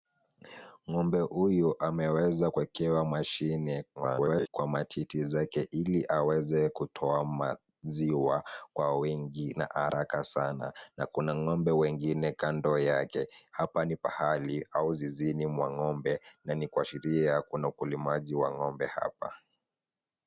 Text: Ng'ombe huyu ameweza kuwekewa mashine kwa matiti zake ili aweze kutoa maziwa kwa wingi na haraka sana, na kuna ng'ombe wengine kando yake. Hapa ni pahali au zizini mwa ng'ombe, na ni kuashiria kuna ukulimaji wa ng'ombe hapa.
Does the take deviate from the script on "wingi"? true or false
false